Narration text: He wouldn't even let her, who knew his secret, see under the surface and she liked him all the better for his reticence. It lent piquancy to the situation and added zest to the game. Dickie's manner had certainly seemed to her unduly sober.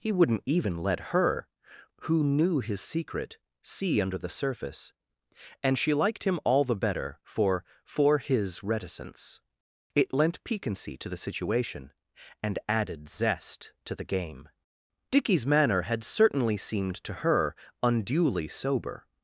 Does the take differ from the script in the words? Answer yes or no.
yes